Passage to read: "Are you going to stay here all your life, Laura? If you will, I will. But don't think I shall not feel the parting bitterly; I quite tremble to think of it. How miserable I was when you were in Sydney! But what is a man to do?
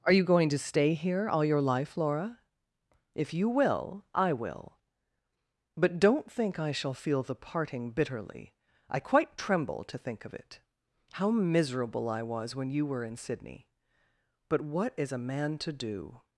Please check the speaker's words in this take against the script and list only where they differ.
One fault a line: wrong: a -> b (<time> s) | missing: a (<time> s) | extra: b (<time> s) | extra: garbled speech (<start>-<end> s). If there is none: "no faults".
missing: not (6.9 s)